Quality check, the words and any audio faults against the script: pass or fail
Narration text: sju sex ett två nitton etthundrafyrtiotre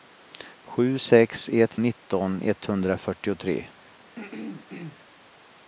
fail